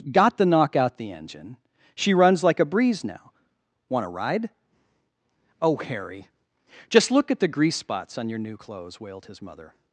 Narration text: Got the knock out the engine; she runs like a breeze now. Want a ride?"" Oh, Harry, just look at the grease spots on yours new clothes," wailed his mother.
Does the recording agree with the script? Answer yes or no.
no